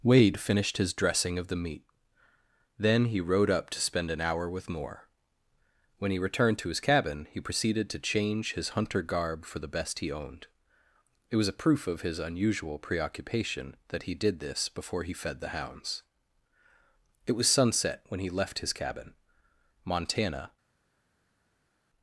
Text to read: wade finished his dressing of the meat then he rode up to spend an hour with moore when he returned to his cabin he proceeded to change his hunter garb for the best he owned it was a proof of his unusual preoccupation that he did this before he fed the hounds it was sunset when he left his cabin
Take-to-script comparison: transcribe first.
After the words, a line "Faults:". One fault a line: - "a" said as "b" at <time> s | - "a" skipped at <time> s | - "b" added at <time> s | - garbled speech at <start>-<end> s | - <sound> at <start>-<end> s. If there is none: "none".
wade finished his dressing of the meat then he rode up to spend an hour with moore when he returned to his cabin he proceeded to change his hunter garb for the best he owned it was a proof of his unusual preoccupation that he did this before he fed the hounds it was sunset when he left his cabin montana
Faults:
- "montana" added at 19.9 s